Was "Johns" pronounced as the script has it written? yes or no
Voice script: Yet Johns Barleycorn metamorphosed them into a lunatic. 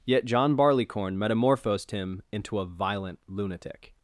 no